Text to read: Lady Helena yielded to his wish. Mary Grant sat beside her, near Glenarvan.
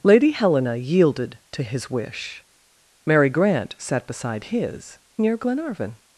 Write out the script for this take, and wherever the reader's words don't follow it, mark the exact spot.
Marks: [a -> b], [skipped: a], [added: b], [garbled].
Lady Helena yielded to his wish. Mary Grant sat beside [her, -> his] near Glenarvan.